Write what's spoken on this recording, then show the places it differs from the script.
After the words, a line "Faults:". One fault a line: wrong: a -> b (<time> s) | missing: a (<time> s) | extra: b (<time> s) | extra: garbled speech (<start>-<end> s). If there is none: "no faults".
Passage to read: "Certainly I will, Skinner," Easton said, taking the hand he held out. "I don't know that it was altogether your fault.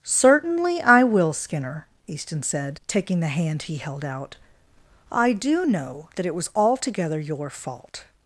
"Certainly I will, Skinner," Easton said, taking the hand he held out. "I do know that it was altogether your fault.
Faults:
wrong: don't -> do (5.3 s)